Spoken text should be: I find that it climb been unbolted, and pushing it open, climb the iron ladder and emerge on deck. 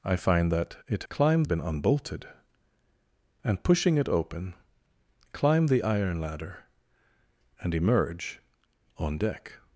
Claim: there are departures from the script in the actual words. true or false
false